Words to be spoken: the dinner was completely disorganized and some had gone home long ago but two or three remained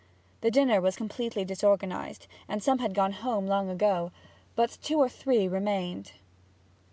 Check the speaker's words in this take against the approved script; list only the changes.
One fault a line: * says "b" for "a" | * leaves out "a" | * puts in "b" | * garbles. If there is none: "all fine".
all fine